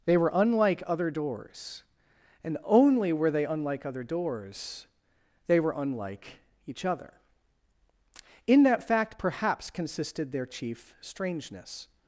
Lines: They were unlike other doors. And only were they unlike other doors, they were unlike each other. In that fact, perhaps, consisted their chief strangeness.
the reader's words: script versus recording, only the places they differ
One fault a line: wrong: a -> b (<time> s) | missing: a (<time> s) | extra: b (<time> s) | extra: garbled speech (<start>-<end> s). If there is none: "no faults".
no faults